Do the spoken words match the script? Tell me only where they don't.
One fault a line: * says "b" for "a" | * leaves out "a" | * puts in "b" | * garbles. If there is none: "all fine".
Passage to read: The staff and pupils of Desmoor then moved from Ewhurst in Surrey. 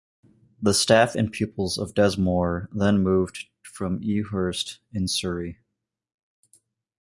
all fine